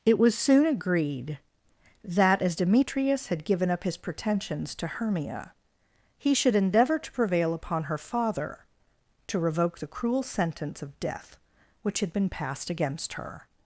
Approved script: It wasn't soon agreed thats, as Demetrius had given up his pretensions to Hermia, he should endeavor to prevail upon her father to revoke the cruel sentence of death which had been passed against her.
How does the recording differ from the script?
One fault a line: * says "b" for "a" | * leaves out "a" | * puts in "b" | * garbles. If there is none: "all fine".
* says "was" for "wasn't"
* says "that" for "thats"